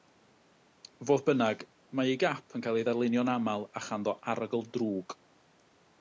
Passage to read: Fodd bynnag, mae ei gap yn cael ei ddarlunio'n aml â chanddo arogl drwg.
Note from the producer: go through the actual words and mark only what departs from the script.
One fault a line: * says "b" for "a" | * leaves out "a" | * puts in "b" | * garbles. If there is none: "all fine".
all fine